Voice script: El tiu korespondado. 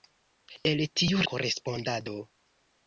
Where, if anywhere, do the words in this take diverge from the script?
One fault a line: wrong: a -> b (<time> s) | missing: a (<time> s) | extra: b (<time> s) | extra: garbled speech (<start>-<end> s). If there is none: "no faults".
no faults